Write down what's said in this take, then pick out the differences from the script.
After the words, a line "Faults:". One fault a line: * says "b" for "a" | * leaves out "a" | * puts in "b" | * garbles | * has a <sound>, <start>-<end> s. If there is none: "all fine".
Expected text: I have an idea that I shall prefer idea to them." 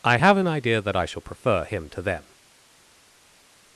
I have an idea that I shall prefer him to them."
Faults:
* says "him" for "idea"